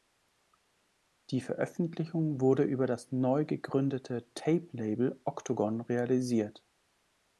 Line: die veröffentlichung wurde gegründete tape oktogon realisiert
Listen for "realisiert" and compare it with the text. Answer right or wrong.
right